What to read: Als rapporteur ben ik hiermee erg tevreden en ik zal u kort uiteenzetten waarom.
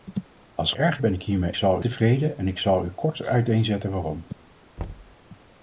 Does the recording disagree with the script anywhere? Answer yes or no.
yes